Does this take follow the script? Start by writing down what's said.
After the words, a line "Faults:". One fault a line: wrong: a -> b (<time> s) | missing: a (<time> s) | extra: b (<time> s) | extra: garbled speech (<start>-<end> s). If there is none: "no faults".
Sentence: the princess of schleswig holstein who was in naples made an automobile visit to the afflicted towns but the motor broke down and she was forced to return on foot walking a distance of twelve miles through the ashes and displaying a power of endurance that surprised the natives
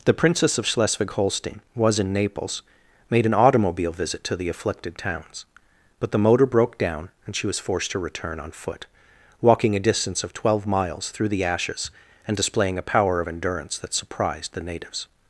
the princess of schleswig holstein was in naples made an automobile visit to the afflicted towns but the motor broke down and she was forced to return on foot walking a distance of twelve miles through the ashes and displaying a power of endurance that surprised the natives
Faults:
missing: who (1.6 s)